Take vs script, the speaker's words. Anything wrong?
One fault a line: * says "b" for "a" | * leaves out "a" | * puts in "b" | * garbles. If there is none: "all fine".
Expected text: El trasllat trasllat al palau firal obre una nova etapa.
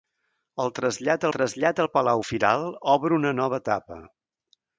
all fine